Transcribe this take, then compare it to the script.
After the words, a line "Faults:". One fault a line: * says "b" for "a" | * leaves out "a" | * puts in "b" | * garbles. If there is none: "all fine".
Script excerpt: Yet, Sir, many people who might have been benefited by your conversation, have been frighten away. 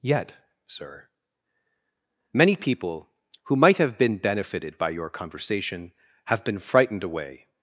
Yet, Sir, many people who might have been benefited by your conversation, have been frightened away.
Faults:
* says "frightened" for "frighten"